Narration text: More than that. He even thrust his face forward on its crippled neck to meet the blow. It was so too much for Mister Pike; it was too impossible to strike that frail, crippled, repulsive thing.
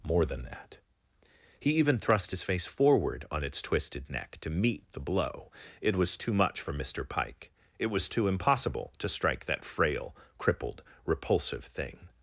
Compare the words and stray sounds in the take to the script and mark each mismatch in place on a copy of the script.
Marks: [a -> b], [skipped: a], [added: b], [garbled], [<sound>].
More than that. He even thrust his face forward on its [crippled -> twisted] neck to meet the blow. It was [skipped: so] too much for Mister Pike; it was too impossible to strike that frail, crippled, repulsive thing.